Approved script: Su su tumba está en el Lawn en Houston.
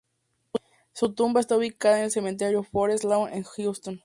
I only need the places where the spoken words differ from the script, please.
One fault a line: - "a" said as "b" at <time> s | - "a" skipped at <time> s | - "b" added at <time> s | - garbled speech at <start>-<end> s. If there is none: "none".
- "su" skipped at 1.1 s
- "ubicada" added at 1.6 s
- "cementerio Forest" added at 2.1 s